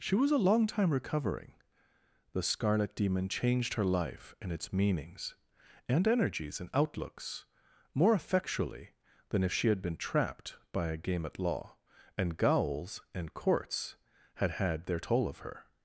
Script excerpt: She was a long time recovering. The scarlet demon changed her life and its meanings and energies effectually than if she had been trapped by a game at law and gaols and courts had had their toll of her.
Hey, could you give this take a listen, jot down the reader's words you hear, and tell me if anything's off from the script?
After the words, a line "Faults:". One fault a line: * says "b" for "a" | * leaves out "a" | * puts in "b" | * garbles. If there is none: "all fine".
She was a long time recovering. The scarlet demon changed her life and its meanings and energies and outlooks more effectually than if she had been trapped by a game at law and gaols and courts had had their toll of her.
Faults:
* puts in "and outlooks more"